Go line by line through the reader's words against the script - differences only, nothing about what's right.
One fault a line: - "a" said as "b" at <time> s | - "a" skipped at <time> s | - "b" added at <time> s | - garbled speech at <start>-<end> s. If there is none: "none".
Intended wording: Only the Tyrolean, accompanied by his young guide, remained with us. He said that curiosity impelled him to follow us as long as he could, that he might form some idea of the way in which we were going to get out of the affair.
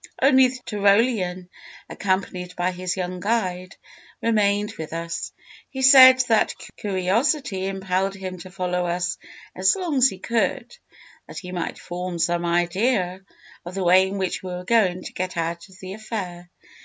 none